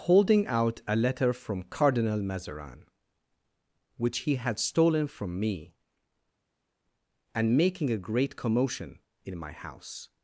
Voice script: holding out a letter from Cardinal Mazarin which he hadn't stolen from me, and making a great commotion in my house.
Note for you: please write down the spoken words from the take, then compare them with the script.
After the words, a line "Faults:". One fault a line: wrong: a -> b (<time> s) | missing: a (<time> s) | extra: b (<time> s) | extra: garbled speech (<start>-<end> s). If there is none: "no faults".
holding out a letter from Cardinal Mazarin which he had stolen from me, and making a great commotion in my house.
Faults:
wrong: hadn't -> had (4.4 s)